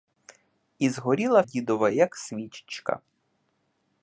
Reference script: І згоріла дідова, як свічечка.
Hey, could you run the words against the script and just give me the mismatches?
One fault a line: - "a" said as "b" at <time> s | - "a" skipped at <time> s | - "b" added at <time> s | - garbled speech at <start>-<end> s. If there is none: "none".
none